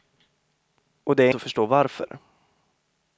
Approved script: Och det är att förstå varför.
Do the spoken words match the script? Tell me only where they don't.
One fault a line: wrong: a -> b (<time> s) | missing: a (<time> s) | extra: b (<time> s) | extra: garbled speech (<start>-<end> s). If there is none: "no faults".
no faults